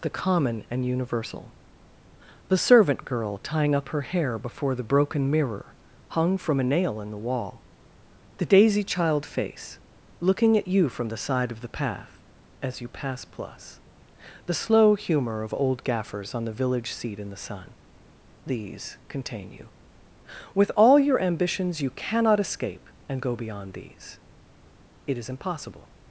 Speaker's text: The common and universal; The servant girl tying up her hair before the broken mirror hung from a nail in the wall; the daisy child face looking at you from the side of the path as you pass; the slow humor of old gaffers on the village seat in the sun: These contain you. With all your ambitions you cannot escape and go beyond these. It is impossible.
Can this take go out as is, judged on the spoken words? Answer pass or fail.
fail